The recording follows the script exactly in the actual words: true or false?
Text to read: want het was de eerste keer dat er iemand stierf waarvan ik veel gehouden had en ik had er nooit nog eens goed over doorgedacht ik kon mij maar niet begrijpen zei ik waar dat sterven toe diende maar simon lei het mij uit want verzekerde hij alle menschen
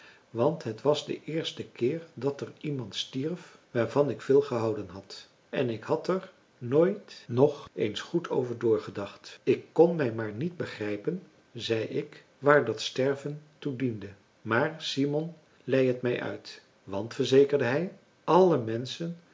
true